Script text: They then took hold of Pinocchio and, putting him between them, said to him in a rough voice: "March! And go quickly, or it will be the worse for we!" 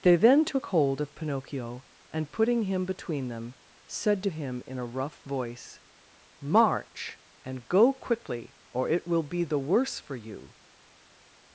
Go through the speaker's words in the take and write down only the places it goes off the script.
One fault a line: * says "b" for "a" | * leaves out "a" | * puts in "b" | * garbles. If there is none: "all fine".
* says "you" for "we"